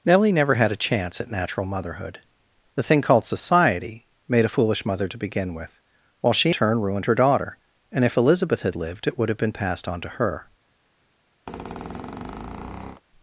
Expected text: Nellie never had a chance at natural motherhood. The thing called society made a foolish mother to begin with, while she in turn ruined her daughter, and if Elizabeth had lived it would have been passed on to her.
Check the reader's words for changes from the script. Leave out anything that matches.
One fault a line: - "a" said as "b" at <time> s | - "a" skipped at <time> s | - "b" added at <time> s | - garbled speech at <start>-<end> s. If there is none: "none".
- "in" skipped at 6.5 s